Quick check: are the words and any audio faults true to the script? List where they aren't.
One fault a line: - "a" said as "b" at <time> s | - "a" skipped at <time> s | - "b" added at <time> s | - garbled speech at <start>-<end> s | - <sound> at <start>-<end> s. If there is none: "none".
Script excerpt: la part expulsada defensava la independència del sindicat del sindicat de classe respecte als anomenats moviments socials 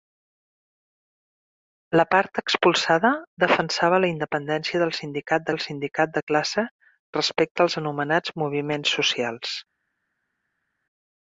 none